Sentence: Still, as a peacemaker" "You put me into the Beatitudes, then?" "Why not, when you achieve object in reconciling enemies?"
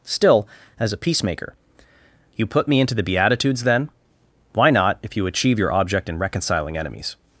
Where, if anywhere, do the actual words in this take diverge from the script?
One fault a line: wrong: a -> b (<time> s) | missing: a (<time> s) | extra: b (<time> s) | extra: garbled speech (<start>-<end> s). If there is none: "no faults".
wrong: when -> if (5.0 s)
extra: your (5.6 s)